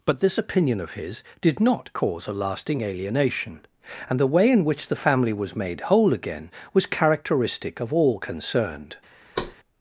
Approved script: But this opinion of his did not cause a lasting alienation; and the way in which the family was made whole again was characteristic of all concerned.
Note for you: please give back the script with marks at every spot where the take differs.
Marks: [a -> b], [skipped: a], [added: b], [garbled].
But this opinion of his did not cause a lasting alienation; and the way in which the family was made whole again was characteristic of all concerned.